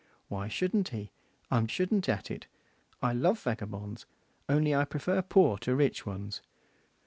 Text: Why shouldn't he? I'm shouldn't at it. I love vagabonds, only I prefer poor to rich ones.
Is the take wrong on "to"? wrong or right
right